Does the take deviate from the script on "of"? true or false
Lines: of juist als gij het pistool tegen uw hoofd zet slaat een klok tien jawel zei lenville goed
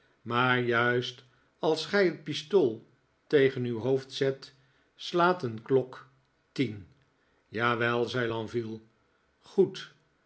true